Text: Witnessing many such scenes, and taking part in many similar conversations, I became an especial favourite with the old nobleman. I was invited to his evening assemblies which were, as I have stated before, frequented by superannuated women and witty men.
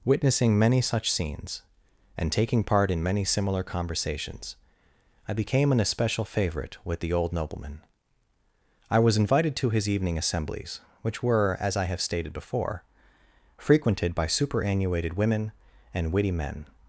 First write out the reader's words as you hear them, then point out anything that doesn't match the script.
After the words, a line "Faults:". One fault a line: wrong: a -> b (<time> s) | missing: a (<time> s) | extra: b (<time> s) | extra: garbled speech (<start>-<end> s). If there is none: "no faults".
Witnessing many such scenes, and taking part in many similar conversations, I became an especial favourite with the old nobleman. I was invited to his evening assemblies which were, as I have stated before, frequented by superannuated women and witty men.
Faults:
no faults